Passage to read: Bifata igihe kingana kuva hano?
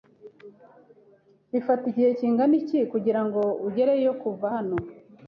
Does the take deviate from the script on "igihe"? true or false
false